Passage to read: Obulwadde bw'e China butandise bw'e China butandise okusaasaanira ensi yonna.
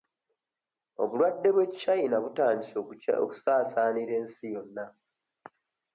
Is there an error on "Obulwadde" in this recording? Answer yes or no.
no